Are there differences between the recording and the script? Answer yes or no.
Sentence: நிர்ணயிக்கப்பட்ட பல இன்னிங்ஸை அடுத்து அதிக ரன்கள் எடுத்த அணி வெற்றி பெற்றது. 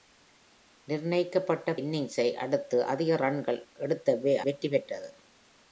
yes